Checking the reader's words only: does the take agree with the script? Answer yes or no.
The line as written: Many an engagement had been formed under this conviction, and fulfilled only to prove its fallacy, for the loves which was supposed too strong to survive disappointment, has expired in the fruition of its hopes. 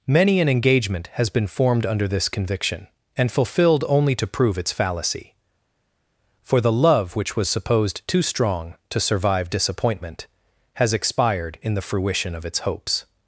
no